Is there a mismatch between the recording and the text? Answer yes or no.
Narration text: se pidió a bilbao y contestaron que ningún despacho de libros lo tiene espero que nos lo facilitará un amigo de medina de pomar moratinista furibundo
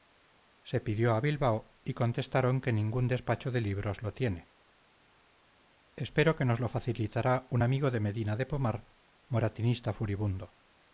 no